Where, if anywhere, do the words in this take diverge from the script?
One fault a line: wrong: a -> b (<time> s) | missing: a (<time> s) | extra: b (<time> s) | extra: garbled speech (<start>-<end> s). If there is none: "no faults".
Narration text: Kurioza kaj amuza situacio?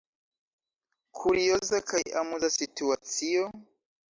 no faults